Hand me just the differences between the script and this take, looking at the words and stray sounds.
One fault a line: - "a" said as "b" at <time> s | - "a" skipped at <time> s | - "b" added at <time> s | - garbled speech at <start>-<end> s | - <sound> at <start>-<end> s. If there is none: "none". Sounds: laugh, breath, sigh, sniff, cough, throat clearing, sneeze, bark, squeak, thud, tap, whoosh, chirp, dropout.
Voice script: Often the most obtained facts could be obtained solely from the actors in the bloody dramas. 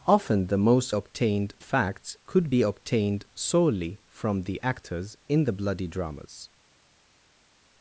none